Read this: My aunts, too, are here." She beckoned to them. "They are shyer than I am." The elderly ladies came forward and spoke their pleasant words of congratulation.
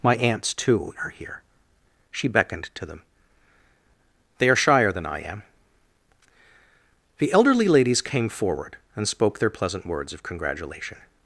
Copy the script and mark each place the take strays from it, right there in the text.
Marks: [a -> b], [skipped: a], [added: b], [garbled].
My aunts, too, are here." She beckoned to them. "They are shyer than I am." The elderly ladies came forward and spoke their pleasant words of congratulation.